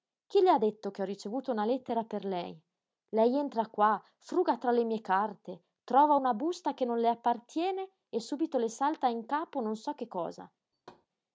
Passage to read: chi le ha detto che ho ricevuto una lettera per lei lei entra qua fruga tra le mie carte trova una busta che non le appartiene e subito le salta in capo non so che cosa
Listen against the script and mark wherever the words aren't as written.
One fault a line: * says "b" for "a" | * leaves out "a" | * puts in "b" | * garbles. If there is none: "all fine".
all fine